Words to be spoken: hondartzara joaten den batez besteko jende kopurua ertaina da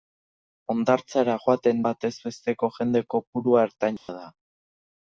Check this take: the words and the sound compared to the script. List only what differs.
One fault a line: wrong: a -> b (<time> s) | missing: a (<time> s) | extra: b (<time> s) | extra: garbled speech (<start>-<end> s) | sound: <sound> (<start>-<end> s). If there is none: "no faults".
missing: den (1.8 s)
sound: dropout (4.0-4.1 s)